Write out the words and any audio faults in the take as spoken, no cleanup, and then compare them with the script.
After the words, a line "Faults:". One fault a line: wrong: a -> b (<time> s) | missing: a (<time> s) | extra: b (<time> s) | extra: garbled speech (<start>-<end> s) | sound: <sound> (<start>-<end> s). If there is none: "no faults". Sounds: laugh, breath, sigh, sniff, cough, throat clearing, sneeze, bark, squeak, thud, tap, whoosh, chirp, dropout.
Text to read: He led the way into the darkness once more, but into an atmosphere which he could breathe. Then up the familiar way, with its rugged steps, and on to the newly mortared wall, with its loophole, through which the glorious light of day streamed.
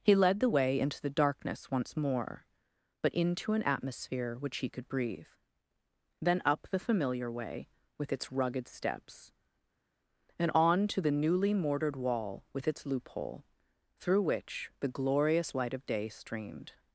He led the way into the darkness once more, but into an atmosphere which he could breathe. Then up the familiar way, with its rugged steps, and on to the newly mortared wall, with its loophole, through which the glorious light of day streamed.
Faults:
no faults